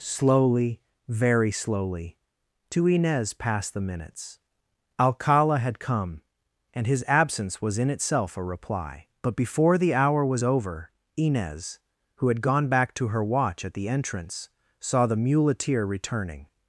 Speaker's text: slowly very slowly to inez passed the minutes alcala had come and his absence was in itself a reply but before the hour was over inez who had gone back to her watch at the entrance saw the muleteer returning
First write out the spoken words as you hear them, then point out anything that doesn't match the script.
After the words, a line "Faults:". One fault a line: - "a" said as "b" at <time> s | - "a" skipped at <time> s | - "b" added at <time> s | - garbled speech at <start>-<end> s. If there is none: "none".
slowly very slowly to inez passed the minutes alcala had come and his absence was in itself a reply but before the hour was over inez who had gone back to her watch at the entrance saw the muleteer returning
Faults:
none